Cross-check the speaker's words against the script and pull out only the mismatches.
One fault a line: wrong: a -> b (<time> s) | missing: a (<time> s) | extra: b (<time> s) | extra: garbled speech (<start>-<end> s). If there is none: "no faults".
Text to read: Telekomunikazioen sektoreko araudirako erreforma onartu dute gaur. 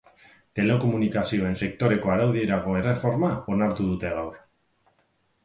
no faults